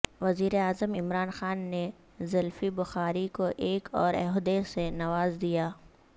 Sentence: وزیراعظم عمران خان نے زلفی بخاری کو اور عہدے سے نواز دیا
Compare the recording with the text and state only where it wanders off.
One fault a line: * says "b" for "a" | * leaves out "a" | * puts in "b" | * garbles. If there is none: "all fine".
* puts in "ایک"